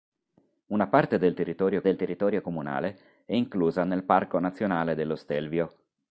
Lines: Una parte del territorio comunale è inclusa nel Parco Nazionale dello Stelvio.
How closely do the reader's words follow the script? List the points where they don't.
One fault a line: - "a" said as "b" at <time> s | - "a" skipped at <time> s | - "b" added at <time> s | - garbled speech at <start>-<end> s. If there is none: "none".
- "del territorio" added at 1.8 s